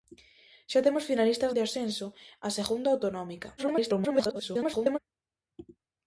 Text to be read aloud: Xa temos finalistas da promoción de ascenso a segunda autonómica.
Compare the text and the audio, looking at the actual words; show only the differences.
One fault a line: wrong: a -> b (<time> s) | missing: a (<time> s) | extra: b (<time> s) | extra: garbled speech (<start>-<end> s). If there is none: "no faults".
missing: da promoción (1.5 s)
extra: garbled speech (3.6-5.0 s)